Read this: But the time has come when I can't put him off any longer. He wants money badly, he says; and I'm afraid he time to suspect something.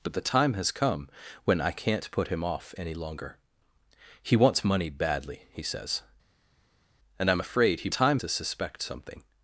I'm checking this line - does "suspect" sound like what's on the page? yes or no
yes